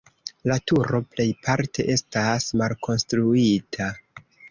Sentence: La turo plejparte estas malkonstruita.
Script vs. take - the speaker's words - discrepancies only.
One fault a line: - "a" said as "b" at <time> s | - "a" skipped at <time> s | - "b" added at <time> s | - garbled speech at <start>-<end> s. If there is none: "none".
none